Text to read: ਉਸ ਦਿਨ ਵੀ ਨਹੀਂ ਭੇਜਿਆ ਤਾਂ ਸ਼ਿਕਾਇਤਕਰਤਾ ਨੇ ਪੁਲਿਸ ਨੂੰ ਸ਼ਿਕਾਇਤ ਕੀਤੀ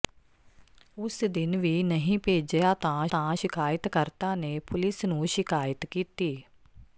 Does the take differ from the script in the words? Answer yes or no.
yes